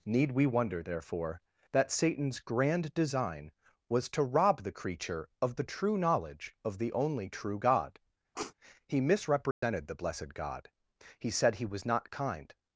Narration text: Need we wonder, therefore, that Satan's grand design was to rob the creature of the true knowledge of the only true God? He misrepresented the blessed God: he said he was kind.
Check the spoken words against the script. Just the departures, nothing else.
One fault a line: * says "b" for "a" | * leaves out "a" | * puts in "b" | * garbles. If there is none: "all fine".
* puts in "not"